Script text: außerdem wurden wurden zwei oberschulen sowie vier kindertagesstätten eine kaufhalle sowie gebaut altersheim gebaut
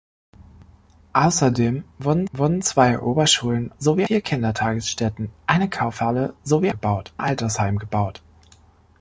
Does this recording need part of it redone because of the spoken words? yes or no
no